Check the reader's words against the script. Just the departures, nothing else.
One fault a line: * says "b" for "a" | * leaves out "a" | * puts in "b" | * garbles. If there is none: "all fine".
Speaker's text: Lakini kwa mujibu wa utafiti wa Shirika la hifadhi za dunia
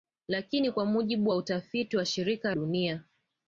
* leaves out "la hifadhi za"